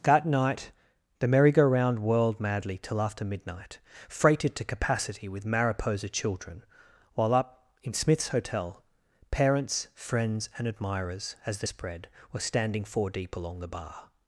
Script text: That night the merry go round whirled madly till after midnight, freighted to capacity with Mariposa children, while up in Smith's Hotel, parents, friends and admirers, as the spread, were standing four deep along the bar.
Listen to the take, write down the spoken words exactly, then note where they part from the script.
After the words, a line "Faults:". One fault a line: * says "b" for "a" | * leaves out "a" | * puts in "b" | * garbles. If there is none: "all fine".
That night the merry go round whirled madly till after midnight, freighted to capacity with Mariposa children, while up in Smith's Hotel, parents, friends and admirers, as the spread, were standing four deep along the bar.
Faults:
all fine